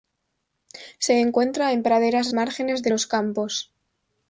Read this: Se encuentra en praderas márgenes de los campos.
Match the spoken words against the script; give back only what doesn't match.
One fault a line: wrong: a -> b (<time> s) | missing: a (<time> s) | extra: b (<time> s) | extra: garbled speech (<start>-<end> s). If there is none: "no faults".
no faults